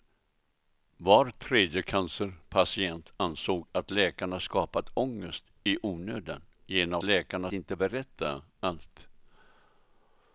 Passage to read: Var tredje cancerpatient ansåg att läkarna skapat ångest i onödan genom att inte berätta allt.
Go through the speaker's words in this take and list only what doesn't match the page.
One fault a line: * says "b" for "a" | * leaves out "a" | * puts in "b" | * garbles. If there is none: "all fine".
* says "läkarna" for "att"